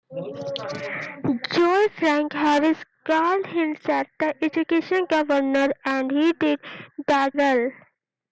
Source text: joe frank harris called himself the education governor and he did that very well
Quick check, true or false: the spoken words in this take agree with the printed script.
false